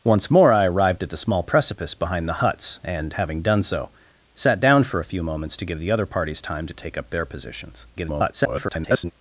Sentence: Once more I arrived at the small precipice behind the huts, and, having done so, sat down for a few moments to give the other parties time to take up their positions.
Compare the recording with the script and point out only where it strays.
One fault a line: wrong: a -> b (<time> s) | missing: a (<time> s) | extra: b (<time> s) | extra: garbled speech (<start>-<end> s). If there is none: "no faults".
extra: garbled speech (8.0-9.1 s)